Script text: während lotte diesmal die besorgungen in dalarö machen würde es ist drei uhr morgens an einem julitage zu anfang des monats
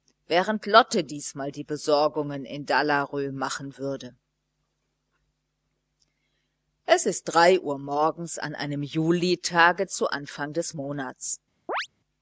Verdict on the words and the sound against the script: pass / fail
fail